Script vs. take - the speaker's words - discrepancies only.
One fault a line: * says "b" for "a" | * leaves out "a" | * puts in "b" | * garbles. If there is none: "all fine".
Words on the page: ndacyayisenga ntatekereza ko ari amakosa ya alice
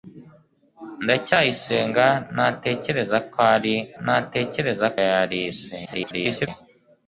* says "ntatekereza" for "amakosa"
* garbles